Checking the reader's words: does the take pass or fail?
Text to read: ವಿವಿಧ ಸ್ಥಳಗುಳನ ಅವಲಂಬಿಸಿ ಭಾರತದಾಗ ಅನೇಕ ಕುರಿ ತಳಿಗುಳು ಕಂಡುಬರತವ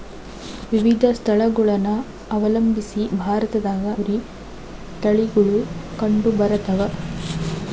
fail